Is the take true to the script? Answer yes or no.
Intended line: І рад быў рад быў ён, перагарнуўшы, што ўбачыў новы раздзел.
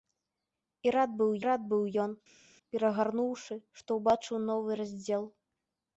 yes